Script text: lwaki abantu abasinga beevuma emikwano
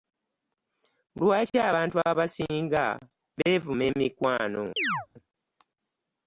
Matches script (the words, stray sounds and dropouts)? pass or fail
fail